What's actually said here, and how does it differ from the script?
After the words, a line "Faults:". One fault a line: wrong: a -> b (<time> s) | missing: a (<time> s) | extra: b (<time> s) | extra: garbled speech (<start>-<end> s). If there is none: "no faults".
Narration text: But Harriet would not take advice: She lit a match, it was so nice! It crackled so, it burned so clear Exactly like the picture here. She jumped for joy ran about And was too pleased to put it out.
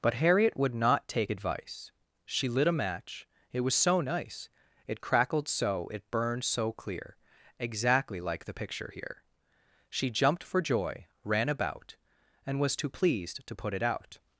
But Harriet would not take advice: She lit a match, it was so nice! It crackled so, it burned so clear Exactly like the picture here. She jumped for joy ran about And was too pleased to put it out.
Faults:
no faults